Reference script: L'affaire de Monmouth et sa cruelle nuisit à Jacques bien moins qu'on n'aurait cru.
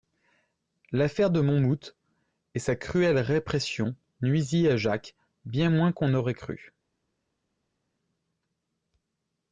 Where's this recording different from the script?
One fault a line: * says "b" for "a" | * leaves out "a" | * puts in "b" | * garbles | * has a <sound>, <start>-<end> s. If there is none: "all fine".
* puts in "répression"